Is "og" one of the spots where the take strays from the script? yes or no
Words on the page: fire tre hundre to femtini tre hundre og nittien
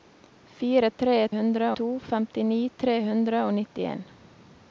no